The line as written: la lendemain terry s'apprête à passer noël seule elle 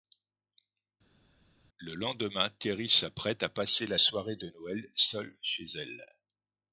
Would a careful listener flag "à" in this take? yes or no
no